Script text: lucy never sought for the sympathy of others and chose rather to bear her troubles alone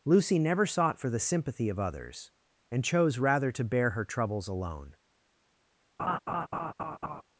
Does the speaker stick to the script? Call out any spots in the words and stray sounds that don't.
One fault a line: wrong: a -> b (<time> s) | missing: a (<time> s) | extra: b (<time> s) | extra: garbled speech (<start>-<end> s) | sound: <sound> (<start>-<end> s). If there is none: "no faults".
sound: laugh (6.0-7.2 s)